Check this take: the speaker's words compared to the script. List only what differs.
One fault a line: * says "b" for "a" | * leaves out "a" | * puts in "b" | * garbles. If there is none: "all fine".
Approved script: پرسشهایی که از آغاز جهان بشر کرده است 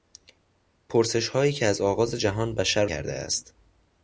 all fine